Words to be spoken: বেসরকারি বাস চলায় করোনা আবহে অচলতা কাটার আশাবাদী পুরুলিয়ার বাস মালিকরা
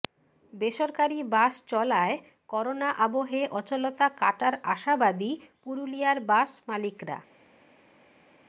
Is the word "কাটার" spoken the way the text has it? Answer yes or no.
yes